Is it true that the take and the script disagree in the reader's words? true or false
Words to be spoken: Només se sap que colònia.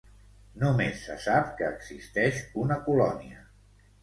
true